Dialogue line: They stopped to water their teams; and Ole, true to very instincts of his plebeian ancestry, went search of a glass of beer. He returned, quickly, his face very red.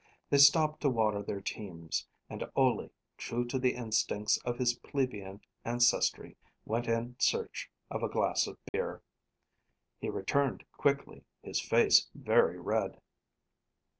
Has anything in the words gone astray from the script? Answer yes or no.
yes